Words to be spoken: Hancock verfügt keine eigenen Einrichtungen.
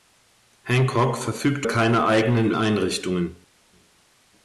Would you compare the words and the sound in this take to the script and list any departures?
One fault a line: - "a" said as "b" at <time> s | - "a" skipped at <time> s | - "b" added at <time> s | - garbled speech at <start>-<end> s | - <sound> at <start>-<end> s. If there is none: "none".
none